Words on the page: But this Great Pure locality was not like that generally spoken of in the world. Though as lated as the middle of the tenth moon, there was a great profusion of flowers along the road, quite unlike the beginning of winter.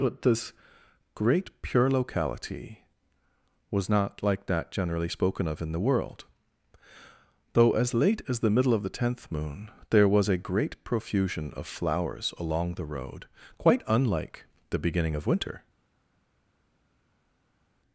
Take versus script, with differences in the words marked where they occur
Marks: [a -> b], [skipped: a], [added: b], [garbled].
But this Great Pure locality was not like that generally spoken of in the world. Though as [lated -> late] as the middle of the tenth moon, there was a great profusion of flowers along the road, quite unlike the beginning of winter.